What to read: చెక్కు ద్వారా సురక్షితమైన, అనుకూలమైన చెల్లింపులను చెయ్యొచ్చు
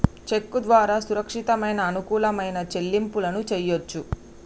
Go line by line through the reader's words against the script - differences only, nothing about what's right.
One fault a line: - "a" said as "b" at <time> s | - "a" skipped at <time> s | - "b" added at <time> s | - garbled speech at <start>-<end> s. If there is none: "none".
none